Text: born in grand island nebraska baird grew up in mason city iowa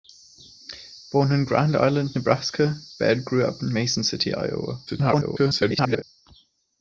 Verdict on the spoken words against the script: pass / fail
fail